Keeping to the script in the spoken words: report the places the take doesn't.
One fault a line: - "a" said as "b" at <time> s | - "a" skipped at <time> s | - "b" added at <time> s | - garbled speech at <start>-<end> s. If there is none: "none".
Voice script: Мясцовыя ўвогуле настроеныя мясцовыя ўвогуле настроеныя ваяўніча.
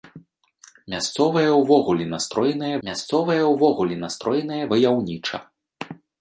none